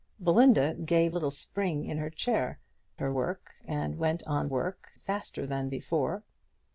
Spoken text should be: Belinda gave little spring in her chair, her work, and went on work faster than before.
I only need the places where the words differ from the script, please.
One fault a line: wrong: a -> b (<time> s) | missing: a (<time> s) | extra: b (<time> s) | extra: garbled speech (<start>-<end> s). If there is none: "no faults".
no faults